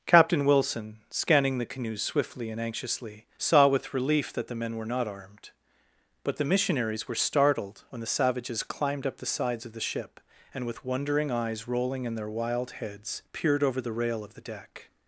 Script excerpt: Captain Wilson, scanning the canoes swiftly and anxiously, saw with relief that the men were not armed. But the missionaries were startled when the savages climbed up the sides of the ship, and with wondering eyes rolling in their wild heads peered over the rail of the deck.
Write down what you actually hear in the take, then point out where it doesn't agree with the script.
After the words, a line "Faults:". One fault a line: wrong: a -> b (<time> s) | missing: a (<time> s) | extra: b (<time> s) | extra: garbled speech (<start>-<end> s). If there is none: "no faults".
Captain Wilson, scanning the canoes swiftly and anxiously, saw with relief that the men were not armed. But the missionaries were startled when the savages climbed up the sides of the ship, and with wondering eyes rolling in their wild heads peered over the rail of the deck.
Faults:
no faults